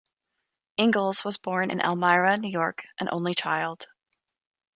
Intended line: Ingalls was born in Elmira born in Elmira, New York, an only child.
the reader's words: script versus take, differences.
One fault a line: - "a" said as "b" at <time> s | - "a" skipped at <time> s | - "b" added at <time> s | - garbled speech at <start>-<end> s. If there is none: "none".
- "born in Elmira" skipped at 2.4 s